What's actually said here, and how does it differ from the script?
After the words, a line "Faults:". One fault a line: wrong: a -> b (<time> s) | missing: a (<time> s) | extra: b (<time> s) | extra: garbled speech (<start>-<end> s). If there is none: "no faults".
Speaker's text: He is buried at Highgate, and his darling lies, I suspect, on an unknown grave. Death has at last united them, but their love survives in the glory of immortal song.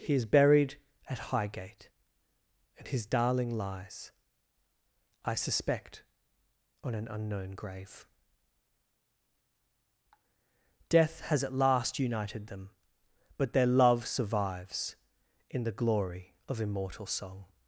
He is buried at Highgate, and his darling lies, I suspect, on an unknown grave. Death has at last united them, but their love survives in the glory of immortal song.
Faults:
no faults